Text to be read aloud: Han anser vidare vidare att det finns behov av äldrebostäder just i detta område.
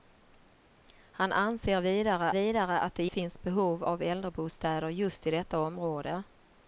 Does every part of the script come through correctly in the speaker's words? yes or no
yes